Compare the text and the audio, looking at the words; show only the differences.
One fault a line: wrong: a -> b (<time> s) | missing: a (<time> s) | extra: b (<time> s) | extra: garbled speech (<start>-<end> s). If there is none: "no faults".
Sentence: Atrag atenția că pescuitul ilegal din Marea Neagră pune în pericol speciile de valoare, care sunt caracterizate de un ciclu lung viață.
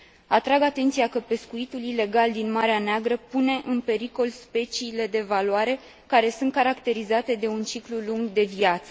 extra: de (8.3 s)